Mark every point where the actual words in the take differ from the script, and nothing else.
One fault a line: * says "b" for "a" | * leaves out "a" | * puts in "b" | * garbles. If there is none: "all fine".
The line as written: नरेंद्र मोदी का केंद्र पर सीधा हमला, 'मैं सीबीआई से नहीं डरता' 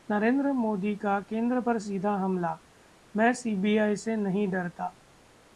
all fine